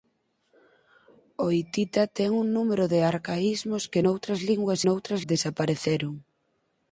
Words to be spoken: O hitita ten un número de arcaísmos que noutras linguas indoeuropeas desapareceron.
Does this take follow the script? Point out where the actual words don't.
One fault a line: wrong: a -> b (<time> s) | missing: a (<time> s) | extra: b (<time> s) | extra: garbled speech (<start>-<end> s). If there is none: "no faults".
wrong: indoeuropeas -> noutras (4.9 s)